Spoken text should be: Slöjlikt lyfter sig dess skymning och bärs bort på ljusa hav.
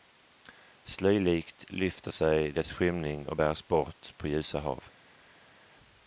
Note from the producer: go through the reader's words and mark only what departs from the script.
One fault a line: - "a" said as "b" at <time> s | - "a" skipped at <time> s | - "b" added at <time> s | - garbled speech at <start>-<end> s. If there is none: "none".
none